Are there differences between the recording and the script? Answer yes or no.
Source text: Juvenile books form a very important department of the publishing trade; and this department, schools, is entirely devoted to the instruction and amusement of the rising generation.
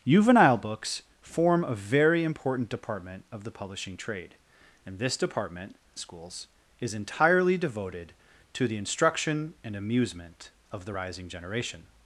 no